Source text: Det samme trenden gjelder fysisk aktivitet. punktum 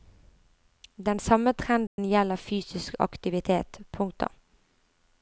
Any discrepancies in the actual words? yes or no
yes